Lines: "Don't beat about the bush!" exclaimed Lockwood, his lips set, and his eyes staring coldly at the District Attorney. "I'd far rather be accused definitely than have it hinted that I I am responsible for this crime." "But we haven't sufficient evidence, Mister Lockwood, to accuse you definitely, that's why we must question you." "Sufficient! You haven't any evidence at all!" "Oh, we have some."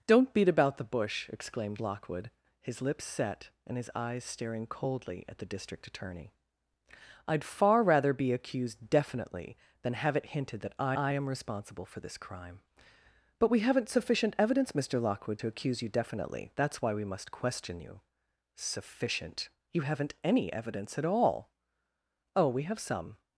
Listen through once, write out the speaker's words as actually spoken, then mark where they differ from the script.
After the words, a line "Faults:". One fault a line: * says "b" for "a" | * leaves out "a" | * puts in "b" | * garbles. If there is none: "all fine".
"Don't beat about the bush!" exclaimed Lockwood, his lips set, and his eyes staring coldly at the District Attorney. "I'd far rather be accused definitely than have it hinted that I I am responsible for this crime." "But we haven't sufficient evidence, Mister Lockwood, to accuse you definitely, that's why we must question you." "Sufficient! You haven't any evidence at all!" "Oh, we have some."
Faults:
all fine